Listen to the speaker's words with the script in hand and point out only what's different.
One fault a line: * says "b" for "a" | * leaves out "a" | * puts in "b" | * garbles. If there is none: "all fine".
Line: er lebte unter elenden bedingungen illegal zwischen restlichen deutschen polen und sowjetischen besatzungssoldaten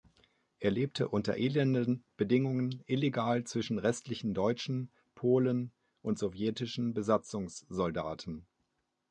all fine